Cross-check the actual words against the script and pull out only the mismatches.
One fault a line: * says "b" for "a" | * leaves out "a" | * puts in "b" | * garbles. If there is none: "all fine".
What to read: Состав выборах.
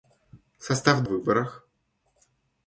all fine